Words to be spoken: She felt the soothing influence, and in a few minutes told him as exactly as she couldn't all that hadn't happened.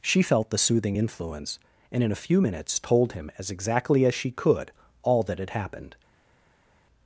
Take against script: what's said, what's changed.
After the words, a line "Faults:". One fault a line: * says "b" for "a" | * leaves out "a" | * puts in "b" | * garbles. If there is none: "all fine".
She felt the soothing influence, and in a few minutes told him as exactly as she could all that had happened.
Faults:
* says "could" for "couldn't"
* says "had" for "hadn't"